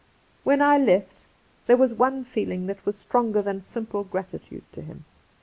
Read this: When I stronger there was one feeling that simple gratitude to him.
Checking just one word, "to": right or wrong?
right